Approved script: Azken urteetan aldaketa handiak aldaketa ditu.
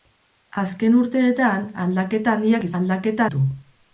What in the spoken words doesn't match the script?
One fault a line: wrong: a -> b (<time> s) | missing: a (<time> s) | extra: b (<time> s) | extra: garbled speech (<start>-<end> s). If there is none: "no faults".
no faults